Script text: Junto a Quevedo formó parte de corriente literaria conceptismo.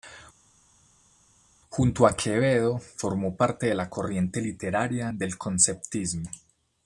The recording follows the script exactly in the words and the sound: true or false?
false